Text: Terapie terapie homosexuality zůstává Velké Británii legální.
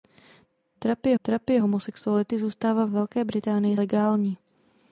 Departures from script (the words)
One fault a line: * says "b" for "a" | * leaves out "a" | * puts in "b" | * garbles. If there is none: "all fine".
all fine